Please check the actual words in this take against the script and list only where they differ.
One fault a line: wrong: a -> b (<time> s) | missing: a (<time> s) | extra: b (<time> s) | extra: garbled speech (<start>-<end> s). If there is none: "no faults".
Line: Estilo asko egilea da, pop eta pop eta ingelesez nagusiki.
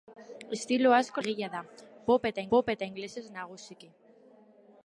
no faults